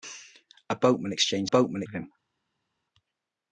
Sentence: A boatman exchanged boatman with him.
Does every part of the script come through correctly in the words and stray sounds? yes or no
yes